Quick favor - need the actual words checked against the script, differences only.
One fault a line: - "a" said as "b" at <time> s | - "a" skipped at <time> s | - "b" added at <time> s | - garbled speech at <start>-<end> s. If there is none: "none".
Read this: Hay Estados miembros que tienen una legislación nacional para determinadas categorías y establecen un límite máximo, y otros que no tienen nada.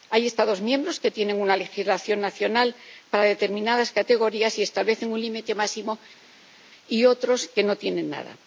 none